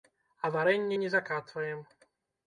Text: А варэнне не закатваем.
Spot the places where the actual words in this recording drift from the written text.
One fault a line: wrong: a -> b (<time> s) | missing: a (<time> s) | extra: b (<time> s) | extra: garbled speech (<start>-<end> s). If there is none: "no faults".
no faults